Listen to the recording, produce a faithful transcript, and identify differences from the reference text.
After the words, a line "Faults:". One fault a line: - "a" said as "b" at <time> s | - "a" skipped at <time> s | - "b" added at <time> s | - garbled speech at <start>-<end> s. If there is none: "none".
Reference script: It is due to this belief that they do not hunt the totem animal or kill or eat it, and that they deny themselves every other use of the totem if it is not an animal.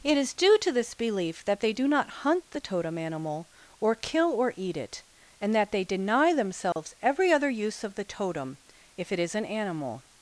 It is due to this belief that they do not hunt the totem animal or kill or eat it, and that they deny themselves every other use of the totem if it is an animal.
Faults:
- "not" skipped at 9.4 s